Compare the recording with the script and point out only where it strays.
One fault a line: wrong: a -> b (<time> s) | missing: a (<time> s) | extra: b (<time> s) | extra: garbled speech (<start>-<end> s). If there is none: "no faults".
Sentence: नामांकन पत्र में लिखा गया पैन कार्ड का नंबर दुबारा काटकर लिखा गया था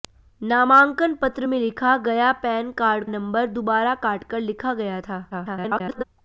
missing: का (3.0 s)
extra: garbled speech (5.3-6.0 s)